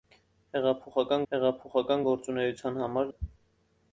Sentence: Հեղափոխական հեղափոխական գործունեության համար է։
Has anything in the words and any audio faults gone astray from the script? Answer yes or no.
no